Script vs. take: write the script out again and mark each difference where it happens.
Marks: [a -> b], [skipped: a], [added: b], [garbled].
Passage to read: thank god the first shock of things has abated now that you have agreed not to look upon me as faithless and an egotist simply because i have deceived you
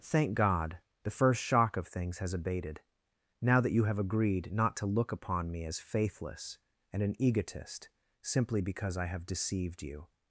thank god the first shock of things has abated now that you have agreed not to look upon me as faithless and an egotist simply because i have deceived you